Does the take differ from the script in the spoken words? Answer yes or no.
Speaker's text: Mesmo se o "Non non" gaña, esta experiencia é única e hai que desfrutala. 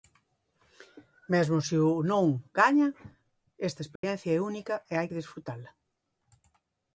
yes